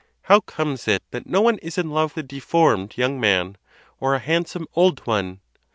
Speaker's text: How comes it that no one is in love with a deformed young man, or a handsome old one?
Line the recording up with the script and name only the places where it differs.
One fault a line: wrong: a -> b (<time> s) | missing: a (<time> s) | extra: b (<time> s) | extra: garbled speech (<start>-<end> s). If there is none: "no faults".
missing: with (2.2 s)